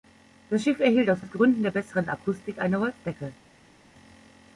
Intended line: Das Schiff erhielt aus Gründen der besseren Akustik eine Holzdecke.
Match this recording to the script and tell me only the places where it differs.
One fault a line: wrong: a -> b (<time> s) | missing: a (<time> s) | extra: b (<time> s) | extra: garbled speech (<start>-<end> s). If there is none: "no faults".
extra: aus (1.2 s)